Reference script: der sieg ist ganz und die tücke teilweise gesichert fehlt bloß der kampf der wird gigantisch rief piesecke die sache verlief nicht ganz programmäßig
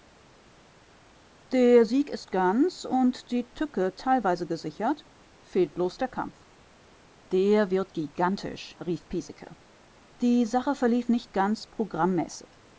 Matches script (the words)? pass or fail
pass